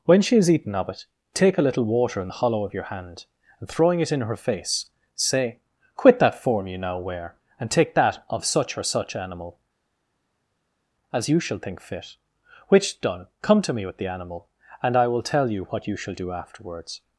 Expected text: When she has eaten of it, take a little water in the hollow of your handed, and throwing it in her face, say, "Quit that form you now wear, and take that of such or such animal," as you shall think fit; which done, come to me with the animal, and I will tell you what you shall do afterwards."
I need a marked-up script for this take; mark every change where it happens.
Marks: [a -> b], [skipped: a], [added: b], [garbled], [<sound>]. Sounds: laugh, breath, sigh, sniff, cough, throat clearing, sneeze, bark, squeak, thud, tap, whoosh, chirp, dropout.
When she has eaten of it, take a little water in the hollow of your [handed, -> hand] and throwing it in her face, say, "Quit that form you now wear, and take that of such or such animal," as you shall think fit; which done, come to me with the animal, and I will tell you what you shall do afterwards."